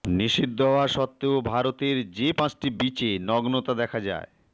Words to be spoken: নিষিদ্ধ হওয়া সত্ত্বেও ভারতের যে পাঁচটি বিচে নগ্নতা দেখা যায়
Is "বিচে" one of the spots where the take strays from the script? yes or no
no